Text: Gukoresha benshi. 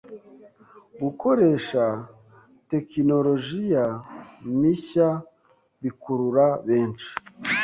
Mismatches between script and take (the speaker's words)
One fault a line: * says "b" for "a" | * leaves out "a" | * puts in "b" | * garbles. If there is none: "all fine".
* puts in "tekinolojiya mishya bikurura"